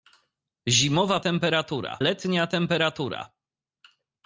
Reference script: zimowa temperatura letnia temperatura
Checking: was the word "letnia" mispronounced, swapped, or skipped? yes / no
no